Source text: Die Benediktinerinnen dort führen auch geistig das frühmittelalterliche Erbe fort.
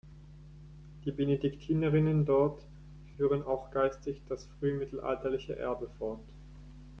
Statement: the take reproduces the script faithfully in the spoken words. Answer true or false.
true